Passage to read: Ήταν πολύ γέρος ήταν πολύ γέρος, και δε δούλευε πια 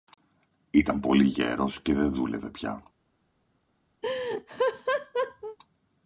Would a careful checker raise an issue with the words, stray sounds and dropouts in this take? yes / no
yes